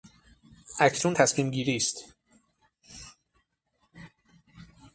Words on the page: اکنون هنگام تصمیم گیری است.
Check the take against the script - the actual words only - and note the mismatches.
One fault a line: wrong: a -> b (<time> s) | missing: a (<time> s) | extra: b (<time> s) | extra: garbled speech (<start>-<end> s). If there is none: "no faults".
missing: هنگام (1.2 s)